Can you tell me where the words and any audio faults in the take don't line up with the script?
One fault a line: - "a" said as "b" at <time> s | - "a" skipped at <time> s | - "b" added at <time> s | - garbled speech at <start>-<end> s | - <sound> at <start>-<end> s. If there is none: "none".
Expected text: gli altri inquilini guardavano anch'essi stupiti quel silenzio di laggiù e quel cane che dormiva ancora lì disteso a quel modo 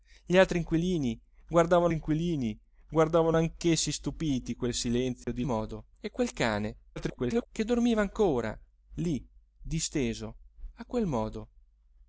- "inquilini guardavano" added at 1.9 s
- dropout at 5.2-5.3 s
- "laggiù" said as "modo" at 5.4 s
- garbled speech at 7.0-7.5 s